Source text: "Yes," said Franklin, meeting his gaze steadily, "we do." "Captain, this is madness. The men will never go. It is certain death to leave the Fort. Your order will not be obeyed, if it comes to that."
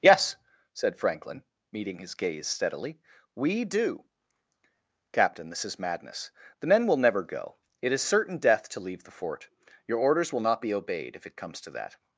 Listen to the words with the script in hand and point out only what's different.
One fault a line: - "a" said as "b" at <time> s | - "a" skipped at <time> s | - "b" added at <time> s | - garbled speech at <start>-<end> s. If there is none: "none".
- "order" said as "orders" at 10.0 s